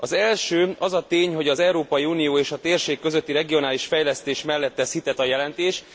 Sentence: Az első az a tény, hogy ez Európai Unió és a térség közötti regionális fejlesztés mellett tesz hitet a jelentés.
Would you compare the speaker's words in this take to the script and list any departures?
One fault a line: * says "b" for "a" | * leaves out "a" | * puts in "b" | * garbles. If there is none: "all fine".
* says "az" for "ez"